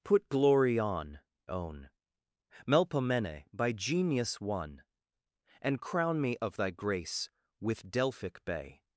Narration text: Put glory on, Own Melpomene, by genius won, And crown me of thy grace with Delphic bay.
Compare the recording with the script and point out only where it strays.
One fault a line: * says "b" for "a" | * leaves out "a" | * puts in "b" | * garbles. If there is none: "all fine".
all fine